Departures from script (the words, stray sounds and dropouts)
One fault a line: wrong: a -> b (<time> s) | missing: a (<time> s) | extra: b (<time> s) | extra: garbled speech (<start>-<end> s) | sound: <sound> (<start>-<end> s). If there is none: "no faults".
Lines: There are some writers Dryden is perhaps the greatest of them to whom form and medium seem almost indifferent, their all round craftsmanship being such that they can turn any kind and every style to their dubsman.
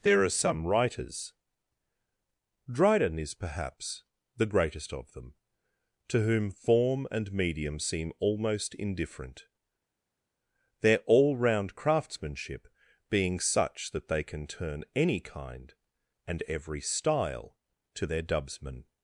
no faults